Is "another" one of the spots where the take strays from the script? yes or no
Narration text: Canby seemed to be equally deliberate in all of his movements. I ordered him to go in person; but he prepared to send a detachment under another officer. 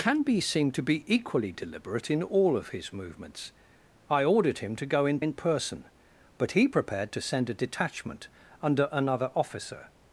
no